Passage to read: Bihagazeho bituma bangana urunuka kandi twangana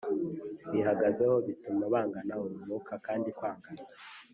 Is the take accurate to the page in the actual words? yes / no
yes